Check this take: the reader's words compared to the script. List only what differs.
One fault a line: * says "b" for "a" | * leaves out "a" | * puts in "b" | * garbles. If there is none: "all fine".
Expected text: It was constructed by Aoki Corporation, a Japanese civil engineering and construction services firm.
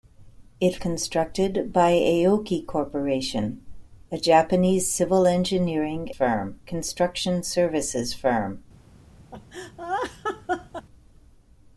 * leaves out "was"
* says "firm" for "and"